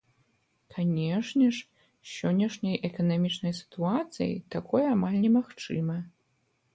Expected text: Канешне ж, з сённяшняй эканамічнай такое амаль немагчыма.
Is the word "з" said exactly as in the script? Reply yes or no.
yes